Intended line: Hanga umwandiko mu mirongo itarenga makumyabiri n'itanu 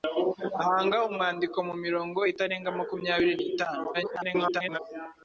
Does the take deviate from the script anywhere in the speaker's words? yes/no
yes